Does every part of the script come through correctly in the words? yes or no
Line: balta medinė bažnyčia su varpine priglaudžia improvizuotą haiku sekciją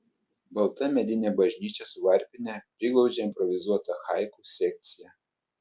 yes